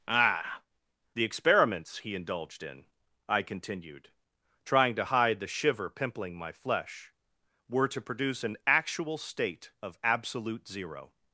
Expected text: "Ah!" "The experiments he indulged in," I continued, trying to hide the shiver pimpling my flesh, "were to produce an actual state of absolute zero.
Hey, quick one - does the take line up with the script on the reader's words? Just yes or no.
yes